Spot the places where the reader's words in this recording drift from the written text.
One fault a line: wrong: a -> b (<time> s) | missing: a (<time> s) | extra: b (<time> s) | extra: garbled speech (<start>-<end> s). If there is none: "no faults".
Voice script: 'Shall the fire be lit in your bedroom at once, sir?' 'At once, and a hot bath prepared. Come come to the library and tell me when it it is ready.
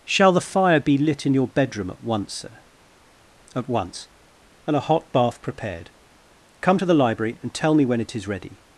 missing: come (6.8 s)
missing: it (8.1 s)